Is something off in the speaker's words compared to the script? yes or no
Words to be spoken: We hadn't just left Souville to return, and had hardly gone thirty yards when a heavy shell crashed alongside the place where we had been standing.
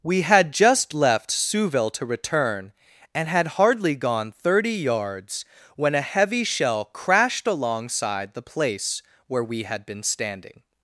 yes